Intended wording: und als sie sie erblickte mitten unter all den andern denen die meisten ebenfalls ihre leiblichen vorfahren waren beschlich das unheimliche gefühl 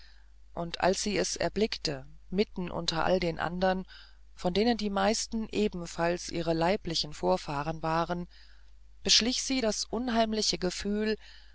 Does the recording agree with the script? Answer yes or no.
no